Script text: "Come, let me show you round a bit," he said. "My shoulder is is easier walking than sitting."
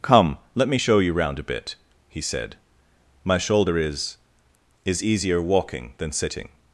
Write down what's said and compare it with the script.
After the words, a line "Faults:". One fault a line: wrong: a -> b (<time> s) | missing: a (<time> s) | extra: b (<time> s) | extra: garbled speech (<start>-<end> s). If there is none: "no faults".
"Come, let me show you round a bit," he said. "My shoulder is is easier walking than sitting."
Faults:
no faults